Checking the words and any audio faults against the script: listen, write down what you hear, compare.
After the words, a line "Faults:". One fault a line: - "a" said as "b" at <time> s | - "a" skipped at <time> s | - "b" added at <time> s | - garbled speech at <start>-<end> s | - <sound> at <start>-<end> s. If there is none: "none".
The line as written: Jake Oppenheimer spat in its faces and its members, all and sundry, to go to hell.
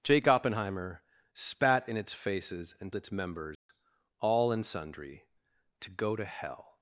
Jake Oppenheimer spat in its faces and its members, all and sundry, to go to hell.
Faults:
- dropout at 3.5-3.7 s